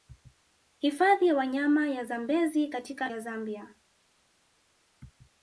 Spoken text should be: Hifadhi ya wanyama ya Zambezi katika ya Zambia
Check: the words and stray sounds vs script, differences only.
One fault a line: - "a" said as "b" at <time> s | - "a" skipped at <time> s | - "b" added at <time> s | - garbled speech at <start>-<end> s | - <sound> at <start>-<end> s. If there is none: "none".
none